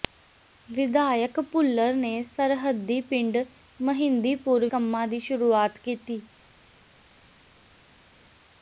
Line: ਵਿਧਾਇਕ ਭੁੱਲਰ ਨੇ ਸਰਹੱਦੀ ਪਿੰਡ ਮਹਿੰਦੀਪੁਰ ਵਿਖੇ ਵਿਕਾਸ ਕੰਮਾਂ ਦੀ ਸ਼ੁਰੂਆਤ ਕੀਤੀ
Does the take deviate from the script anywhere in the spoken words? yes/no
yes